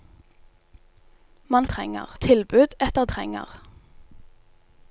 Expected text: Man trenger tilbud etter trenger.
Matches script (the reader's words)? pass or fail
pass